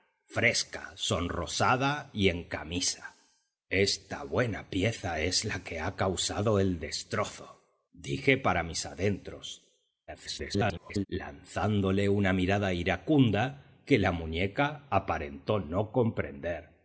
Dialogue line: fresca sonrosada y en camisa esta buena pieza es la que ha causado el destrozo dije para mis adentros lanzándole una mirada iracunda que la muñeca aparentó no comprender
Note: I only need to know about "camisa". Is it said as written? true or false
true